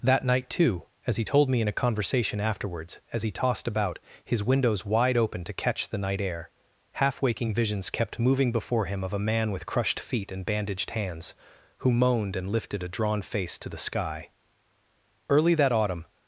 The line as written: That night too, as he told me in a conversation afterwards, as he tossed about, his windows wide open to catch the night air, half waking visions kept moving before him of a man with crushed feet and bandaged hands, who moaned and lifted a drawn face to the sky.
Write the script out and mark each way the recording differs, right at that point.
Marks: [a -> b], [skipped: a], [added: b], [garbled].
That night too, as he told me in a conversation afterwards, as he tossed about, his windows wide open to catch the night air, half waking visions kept moving before him of a man with crushed feet and bandaged hands, who moaned and lifted a drawn face to the sky. [added: Early that autumn]